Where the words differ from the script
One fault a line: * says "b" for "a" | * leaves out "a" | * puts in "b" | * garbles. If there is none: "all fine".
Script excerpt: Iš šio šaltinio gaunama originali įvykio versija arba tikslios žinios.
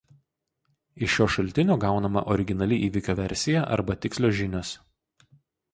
all fine